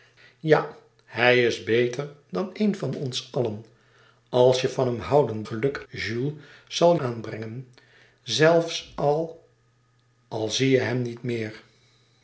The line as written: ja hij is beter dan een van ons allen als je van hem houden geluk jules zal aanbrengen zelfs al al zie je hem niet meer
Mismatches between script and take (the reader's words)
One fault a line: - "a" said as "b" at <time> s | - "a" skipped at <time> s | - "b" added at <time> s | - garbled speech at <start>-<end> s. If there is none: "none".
none